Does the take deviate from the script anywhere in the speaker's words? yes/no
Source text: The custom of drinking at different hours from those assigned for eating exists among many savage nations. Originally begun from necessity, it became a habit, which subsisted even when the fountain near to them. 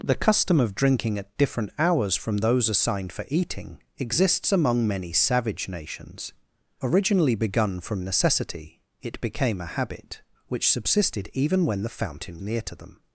no